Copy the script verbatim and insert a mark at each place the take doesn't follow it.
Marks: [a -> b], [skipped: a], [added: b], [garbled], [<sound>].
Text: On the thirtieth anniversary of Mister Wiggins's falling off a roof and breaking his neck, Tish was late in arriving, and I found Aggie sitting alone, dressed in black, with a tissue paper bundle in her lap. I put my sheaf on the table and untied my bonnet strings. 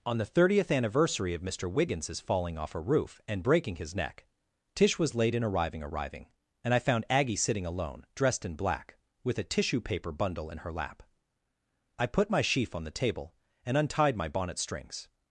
On the thirtieth anniversary of Mister Wiggins's falling off a roof and breaking his neck, Tish was late in arriving, [added: arriving] and I found Aggie sitting alone, dressed in black, with a tissue paper bundle in her lap. I put my sheaf on the table and untied my bonnet strings.